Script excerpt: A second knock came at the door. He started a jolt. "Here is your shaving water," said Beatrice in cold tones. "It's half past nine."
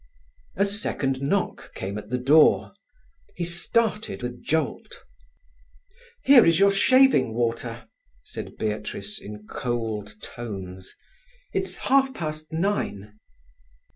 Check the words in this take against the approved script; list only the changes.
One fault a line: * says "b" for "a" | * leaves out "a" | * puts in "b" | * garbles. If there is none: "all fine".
all fine